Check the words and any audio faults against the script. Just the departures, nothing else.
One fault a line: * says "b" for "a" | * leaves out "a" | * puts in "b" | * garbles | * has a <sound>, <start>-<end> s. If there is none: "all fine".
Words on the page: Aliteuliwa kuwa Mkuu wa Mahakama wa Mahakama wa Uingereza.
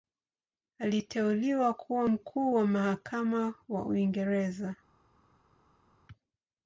* leaves out "Mahakama wa"